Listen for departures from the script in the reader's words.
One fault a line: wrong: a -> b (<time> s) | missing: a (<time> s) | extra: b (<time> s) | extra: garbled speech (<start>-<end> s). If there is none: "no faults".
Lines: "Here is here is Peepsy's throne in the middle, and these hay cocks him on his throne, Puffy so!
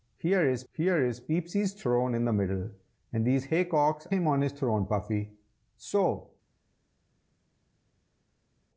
no faults